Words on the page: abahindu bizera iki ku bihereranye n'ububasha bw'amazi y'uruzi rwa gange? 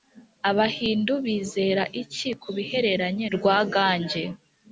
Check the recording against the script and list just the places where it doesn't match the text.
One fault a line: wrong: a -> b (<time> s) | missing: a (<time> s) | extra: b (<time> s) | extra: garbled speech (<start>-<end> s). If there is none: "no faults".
missing: n'ububasha bw'amazi y'uruzi (3.2 s)